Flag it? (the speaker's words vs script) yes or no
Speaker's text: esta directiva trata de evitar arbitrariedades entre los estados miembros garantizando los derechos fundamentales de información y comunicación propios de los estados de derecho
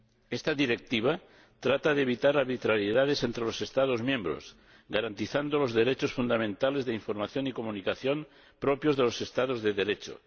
no